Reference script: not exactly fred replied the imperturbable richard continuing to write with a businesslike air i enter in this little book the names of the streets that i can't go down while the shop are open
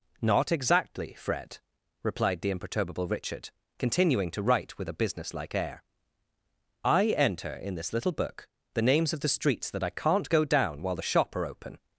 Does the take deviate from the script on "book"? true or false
false